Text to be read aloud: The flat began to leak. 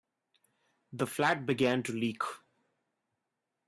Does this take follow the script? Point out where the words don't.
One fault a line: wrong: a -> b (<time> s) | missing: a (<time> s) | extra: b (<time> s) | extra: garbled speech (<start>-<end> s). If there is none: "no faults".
no faults